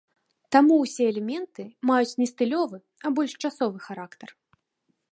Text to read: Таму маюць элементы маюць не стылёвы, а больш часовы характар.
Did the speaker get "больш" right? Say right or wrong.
right